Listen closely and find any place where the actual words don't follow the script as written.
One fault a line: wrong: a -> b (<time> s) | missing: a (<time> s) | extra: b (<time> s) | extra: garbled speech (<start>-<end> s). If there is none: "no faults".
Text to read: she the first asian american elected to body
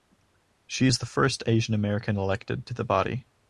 extra: is (0.8 s)
extra: the (2.7 s)